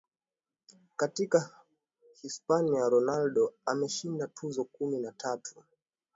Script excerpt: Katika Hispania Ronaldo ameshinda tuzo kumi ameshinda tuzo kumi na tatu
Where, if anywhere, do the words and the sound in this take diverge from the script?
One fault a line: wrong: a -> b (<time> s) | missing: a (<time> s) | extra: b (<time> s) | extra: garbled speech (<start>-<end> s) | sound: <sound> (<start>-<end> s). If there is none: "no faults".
missing: ameshinda tuzo kumi (5.0 s)